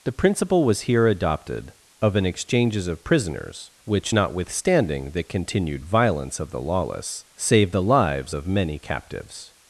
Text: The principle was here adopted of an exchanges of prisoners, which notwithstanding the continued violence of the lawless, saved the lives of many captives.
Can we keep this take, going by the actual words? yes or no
yes